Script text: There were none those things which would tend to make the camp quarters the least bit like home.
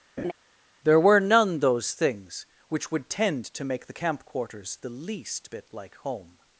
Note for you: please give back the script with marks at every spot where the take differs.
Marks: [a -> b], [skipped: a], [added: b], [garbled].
There were none those things which would tend to make the camp quarters the least bit like home.